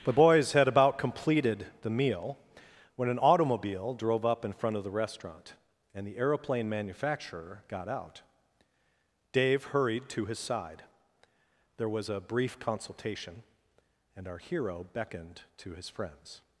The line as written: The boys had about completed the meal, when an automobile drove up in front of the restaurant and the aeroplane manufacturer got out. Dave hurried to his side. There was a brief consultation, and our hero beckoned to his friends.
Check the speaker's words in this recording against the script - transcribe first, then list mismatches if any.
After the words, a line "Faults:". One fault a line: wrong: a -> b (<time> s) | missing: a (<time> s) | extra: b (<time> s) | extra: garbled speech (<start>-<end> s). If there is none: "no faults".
The boys had about completed the meal, when an automobile drove up in front of the restaurant and the aeroplane manufacturer got out. Dave hurried to his side. There was a brief consultation, and our hero beckoned to his friends.
Faults:
no faults